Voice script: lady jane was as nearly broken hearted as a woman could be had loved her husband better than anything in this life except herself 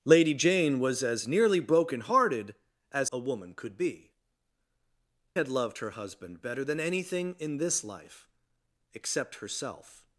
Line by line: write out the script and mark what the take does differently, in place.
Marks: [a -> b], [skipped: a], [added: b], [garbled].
lady jane was as nearly broken hearted as a woman could be had loved her husband better than anything in this life except herself